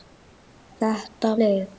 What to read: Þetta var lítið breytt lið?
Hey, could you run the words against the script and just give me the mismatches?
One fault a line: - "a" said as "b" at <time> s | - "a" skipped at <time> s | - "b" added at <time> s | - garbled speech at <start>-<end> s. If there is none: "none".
- "var lítið breytt" skipped at 1.3 s